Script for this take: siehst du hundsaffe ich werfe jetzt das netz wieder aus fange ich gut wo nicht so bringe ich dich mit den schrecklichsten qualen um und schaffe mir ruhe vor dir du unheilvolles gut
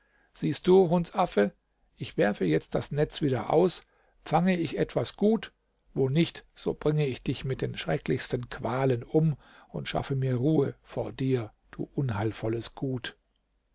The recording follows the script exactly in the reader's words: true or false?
false